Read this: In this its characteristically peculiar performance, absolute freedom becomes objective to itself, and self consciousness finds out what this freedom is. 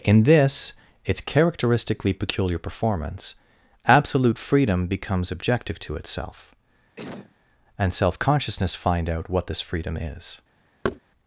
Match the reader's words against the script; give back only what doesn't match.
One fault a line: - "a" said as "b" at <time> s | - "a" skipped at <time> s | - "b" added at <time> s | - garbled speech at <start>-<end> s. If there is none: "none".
- "finds" said as "find" at 8.7 s